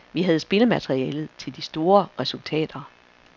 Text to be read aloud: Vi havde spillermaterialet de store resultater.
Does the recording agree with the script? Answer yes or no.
no